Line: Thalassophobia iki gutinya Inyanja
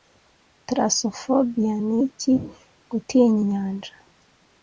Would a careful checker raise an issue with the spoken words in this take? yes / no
yes